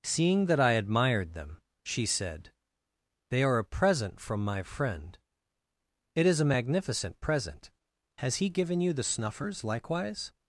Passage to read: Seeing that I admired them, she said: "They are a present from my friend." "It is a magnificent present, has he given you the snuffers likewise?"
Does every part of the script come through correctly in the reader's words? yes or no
yes